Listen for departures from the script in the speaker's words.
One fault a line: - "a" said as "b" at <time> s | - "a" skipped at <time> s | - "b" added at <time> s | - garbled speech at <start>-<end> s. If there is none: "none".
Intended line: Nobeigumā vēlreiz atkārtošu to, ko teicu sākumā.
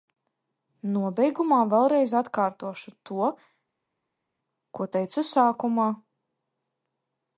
none